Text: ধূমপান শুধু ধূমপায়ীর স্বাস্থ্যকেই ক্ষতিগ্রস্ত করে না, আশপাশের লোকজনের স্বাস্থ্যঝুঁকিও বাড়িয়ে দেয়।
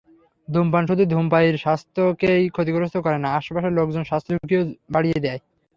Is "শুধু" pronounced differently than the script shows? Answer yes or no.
no